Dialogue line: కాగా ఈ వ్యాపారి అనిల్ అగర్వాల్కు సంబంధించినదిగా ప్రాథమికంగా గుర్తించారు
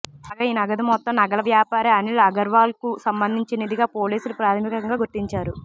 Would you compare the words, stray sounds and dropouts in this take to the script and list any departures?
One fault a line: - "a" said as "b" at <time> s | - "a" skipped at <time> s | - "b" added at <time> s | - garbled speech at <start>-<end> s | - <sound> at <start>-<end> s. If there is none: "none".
- "నగదు మొత్తం నగల" added at 0.5 s
- "పోలీసులు" added at 4.0 s